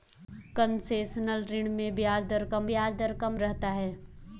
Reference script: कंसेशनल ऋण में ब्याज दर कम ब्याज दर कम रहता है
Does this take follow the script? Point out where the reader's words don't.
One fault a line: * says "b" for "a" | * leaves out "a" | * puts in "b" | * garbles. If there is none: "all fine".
all fine